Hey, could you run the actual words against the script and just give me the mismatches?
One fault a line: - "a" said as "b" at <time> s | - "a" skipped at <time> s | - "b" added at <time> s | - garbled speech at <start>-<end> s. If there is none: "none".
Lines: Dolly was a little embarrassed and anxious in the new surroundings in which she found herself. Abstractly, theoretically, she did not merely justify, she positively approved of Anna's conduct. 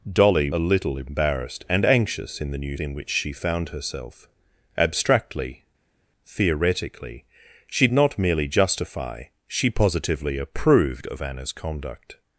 - "was" skipped at 0.5 s
- "surroundings" skipped at 2.8 s
- "did" skipped at 7.9 s